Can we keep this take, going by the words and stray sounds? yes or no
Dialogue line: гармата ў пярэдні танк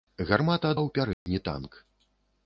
no